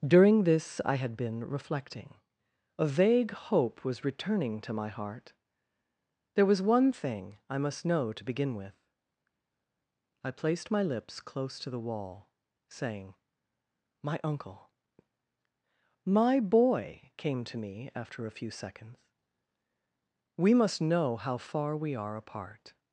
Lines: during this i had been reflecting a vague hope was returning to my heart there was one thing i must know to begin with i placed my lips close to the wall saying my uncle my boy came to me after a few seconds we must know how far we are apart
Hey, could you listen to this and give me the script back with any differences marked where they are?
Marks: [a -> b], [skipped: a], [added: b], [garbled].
during this i had been reflecting a vague hope was returning to my heart there was one thing i must know to begin with i placed my lips close to the wall saying my uncle my boy came to me after a few seconds we must know how far we are apart